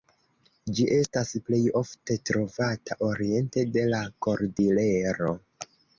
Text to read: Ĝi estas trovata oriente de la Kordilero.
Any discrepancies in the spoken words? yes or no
yes